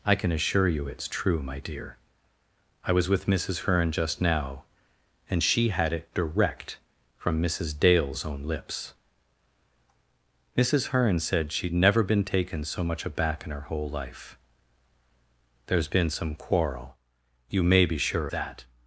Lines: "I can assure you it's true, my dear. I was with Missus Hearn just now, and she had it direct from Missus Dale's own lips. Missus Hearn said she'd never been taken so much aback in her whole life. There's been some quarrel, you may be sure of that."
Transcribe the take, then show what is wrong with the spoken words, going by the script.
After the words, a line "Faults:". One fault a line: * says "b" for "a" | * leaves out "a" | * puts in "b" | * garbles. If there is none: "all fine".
"I can assure you it's true, my dear. I was with Missus Hearn just now, and she had it direct from Missus Dale's own lips. Missus Hearn said she'd never been taken so much aback in her whole life. There's been some quarrel, you may be sure that."
Faults:
* leaves out "of"